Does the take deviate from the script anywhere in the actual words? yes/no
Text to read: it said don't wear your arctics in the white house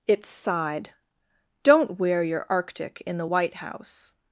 yes